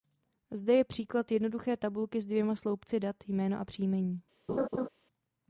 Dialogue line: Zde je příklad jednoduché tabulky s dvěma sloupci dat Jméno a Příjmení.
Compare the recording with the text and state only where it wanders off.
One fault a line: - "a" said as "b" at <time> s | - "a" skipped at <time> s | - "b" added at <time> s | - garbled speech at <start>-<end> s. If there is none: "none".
none